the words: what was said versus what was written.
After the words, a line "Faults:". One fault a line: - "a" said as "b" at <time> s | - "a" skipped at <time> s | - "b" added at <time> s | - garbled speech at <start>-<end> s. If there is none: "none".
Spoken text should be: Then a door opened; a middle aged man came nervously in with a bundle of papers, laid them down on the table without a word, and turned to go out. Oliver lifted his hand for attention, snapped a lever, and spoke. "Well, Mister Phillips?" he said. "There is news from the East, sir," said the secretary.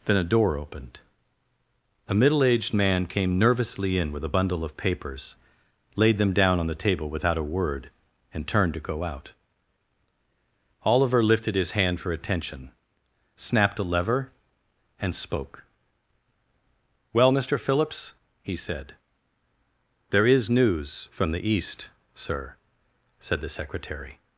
Then a door opened; a middle aged man came nervously in with a bundle of papers, laid them down on the table without a word, and turned to go out. Oliver lifted his hand for attention, snapped a lever, and spoke. "Well, Mister Phillips?" he said. "There is news from the East, sir," said the secretary.
Faults:
none